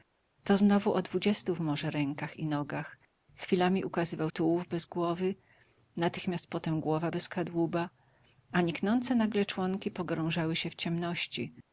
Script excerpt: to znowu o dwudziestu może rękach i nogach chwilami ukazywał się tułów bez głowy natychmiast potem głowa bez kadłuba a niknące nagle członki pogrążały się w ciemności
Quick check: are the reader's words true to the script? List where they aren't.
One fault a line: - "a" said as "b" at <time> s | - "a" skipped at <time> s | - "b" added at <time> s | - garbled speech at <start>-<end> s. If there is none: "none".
- "się" skipped at 4.3 s